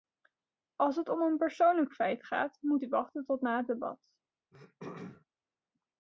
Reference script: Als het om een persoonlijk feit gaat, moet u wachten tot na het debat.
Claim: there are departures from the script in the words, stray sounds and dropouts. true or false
true